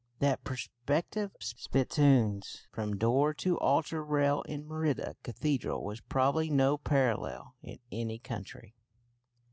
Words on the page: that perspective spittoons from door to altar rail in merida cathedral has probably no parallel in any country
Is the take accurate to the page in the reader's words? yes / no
yes